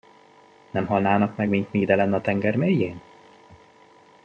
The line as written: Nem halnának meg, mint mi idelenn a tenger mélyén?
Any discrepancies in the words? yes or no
no